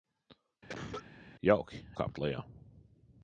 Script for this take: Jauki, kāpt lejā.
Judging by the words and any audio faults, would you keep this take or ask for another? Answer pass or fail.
fail